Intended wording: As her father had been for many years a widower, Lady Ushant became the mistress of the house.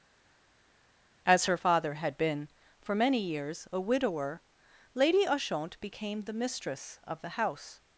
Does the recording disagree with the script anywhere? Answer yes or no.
no